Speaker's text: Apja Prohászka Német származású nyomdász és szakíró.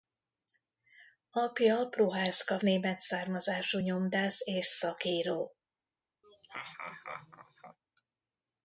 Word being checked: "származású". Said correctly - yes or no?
yes